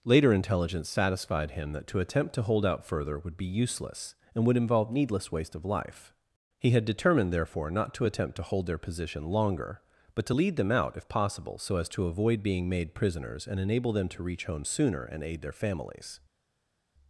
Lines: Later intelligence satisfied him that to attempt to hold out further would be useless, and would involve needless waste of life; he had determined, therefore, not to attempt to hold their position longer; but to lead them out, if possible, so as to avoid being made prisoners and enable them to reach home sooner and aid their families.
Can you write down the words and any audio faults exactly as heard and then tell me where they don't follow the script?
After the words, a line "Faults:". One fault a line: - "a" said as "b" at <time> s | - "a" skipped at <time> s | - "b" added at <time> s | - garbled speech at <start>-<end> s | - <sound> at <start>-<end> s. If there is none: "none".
Later intelligence satisfied him that to attempt to hold out further would be useless, and would involve needless waste of life; he had determined, therefore, not to attempt to hold their position longer; but to lead them out, if possible, so as to avoid being made prisoners and enable them to reach home sooner and aid their families.
Faults:
none